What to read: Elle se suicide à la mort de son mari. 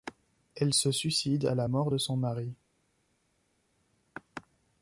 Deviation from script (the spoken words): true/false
false